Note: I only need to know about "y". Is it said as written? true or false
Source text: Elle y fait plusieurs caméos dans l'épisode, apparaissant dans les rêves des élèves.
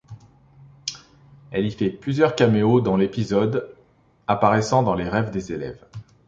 true